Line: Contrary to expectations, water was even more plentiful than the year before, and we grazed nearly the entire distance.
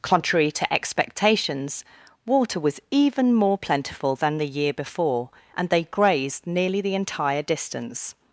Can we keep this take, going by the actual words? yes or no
no